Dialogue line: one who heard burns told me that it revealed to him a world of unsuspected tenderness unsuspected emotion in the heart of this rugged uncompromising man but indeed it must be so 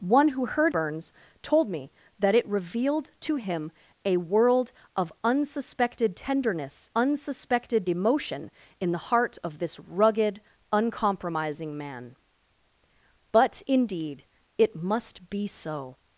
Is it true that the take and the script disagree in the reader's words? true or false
false